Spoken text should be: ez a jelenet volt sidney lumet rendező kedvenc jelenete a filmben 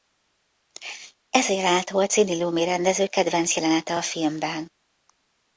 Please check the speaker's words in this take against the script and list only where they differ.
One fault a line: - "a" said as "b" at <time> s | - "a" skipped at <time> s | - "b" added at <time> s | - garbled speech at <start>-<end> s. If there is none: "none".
none